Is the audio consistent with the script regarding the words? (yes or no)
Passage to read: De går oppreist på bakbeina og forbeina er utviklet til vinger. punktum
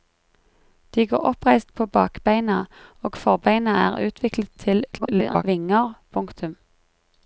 no